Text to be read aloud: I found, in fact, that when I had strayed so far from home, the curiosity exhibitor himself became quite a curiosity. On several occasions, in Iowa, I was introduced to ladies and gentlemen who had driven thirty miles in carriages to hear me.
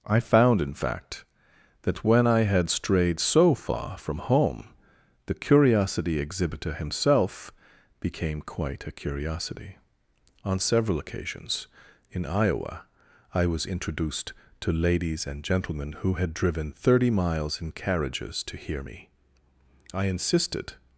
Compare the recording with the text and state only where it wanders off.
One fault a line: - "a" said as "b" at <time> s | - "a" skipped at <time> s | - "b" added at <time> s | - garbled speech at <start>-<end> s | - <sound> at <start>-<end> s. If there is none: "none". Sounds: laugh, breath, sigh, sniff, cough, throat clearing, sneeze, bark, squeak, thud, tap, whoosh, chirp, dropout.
- "I insisted" added at 19.9 s